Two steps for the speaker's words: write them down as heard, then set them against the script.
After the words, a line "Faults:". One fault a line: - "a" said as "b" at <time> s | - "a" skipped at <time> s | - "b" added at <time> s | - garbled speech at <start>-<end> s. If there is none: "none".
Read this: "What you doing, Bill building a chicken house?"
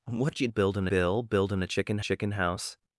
"What you building, Bill building a chicken chicken house?"
Faults:
- "doing" said as "building" at 0.5 s
- "chicken" added at 2.0 s